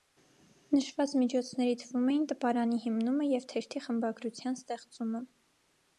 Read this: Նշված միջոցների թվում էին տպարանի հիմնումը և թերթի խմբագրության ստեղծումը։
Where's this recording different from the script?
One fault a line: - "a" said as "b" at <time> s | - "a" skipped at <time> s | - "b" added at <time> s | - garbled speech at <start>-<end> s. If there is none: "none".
none